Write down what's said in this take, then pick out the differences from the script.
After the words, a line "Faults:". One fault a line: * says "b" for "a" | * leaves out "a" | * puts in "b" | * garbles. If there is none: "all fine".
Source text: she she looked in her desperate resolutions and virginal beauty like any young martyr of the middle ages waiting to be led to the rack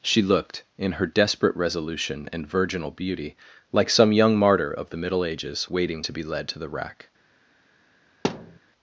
she looked in her desperate resolution and virginal beauty like some young martyr of the middle ages waiting to be led to the rack
Faults:
* leaves out "she"
* says "resolution" for "resolutions"
* says "some" for "any"